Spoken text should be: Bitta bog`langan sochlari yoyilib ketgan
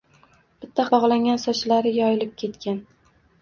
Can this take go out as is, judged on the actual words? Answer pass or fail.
pass